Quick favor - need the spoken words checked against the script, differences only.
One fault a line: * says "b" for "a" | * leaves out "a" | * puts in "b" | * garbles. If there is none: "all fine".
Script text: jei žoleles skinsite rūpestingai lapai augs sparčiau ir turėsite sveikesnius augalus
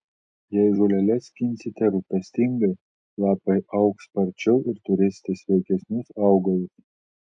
all fine